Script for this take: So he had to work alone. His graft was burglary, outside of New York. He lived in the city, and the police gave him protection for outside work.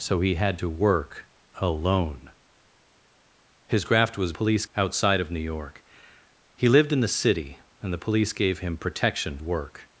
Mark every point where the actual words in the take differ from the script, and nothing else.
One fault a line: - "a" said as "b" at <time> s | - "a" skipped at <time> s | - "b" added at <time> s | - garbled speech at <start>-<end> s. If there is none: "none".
- "burglary" said as "police" at 4.3 s
- "for outside" skipped at 9.4 s